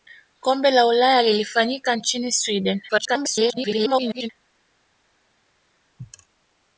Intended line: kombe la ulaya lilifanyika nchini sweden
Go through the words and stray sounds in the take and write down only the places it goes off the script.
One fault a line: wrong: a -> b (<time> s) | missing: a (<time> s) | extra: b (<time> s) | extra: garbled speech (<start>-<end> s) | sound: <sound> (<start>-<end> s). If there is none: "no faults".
extra: garbled speech (2.9-4.3 s)